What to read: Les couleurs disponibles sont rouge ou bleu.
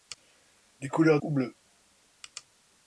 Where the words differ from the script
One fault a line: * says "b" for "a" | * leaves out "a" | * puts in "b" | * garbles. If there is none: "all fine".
* leaves out "disponibles sont rouge"